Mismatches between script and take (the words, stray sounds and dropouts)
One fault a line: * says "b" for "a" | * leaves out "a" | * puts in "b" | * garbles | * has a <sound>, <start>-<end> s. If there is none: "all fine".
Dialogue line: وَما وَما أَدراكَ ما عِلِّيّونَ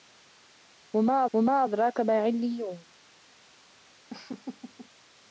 * has a laugh, 4.1-4.9 s